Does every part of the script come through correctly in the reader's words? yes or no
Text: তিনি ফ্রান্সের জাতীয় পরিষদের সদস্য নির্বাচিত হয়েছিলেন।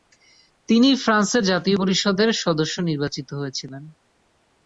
yes